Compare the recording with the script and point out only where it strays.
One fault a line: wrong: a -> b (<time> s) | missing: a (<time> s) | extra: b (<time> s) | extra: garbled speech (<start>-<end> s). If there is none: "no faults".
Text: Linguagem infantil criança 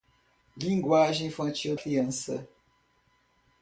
no faults